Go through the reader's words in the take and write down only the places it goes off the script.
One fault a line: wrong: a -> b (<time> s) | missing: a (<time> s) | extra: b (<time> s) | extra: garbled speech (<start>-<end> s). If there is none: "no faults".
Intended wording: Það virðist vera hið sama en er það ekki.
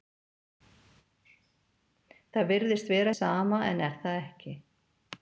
missing: hið (3.1 s)